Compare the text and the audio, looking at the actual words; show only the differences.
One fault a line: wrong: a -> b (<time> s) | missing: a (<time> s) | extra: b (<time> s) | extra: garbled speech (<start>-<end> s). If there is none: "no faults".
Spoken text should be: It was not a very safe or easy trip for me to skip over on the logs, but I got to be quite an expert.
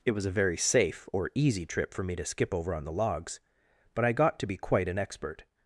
missing: not (0.2 s)